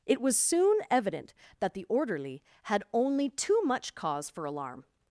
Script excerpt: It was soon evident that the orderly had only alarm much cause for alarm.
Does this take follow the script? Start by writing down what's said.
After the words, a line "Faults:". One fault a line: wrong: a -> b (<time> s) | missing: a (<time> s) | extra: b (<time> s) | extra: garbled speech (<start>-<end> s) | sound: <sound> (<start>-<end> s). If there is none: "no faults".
It was soon evident that the orderly had only too much cause for alarm.
Faults:
wrong: alarm -> too (3.3 s)